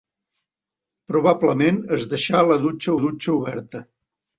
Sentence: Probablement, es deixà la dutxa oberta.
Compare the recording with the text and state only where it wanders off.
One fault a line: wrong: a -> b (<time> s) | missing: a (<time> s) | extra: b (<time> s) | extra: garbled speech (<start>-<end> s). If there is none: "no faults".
extra: dutxa (3.0 s)